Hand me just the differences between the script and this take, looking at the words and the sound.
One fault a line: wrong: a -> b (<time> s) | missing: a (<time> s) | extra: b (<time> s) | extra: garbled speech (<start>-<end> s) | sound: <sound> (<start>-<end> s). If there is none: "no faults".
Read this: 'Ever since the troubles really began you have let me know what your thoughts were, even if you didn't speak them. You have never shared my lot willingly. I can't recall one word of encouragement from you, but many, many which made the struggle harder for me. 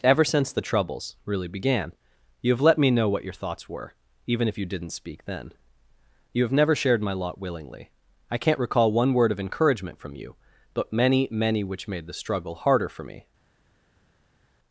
wrong: them -> then (5.2 s)